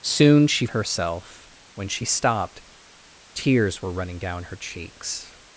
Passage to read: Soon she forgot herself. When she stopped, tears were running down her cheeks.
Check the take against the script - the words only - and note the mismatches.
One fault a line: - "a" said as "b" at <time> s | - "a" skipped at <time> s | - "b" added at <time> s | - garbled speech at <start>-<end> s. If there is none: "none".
- "forgot" skipped at 0.7 s